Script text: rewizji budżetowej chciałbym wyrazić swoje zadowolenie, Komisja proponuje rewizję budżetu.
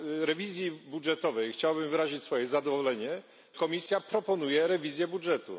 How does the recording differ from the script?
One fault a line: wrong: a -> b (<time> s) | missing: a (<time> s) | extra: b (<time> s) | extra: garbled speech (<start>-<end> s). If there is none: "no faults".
no faults